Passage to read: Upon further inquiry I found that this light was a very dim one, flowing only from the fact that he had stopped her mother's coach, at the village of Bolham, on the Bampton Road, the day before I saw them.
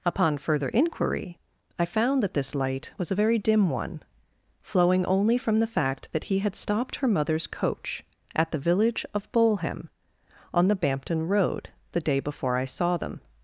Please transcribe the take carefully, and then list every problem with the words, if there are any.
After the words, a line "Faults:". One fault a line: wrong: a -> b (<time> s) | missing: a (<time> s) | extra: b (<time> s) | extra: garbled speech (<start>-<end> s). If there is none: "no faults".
Upon further inquiry I found that this light was a very dim one, flowing only from the fact that he had stopped her mother's coach, at the village of Bolham, on the Bampton Road, the day before I saw them.
Faults:
no faults